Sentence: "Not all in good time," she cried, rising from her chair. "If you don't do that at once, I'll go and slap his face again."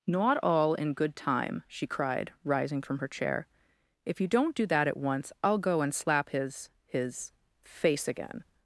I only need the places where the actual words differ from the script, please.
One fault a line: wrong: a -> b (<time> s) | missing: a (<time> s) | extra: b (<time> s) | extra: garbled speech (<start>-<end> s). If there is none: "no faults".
extra: his (6.9 s)